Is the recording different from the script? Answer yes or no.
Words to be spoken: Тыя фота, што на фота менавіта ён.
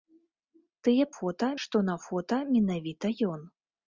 no